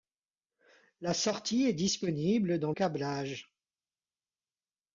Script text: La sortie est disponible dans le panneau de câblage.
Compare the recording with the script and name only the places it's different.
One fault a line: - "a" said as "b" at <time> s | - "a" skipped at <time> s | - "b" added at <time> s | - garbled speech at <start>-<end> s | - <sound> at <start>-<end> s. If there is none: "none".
- "le panneau de" skipped at 2.7 s